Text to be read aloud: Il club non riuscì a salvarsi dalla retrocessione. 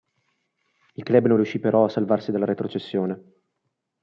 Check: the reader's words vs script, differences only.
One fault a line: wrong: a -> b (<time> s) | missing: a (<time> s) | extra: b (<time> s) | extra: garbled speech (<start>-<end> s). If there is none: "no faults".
extra: però (1.6 s)